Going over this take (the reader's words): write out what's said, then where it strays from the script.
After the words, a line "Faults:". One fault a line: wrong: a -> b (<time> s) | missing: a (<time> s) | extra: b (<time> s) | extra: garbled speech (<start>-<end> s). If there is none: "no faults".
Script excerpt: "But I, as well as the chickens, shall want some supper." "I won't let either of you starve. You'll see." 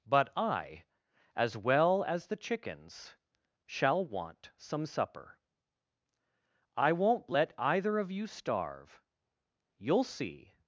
"But I, as well as the chickens, shall want some supper." "I won't let either of you starve. You'll see."
Faults:
no faults